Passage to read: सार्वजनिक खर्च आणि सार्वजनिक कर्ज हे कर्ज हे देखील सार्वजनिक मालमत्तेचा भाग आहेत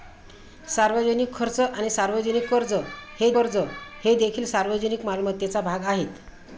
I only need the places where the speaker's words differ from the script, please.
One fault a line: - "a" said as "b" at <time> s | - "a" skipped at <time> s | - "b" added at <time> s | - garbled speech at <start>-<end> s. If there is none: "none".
none